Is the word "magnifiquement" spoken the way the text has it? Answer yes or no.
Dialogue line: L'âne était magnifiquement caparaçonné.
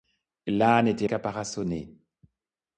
no